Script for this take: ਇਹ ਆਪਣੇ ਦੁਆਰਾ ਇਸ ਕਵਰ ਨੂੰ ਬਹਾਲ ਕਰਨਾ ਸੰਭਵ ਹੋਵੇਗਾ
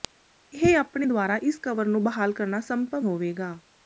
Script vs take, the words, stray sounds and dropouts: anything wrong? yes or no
no